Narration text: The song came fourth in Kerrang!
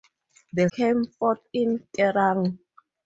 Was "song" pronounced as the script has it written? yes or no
no